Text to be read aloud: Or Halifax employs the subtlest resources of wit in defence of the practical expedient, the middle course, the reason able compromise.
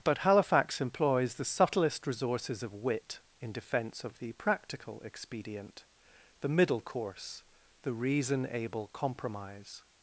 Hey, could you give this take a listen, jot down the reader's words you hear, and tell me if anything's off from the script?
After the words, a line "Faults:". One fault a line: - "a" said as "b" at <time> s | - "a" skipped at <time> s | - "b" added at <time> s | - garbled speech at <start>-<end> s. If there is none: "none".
But Halifax employs the subtlest resources of wit in defence of the practical expedient, the middle course, the reason able compromise.
Faults:
- "Or" said as "But" at 0.0 s